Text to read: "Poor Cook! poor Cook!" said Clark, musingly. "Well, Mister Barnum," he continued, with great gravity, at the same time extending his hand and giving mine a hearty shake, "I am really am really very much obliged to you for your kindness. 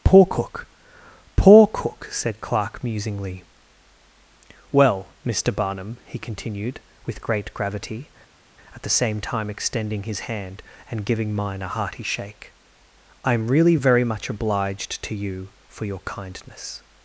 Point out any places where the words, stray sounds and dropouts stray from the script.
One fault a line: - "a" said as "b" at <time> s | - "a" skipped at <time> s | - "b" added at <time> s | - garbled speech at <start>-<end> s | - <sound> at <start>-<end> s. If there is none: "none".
- "am really" skipped at 13.8 s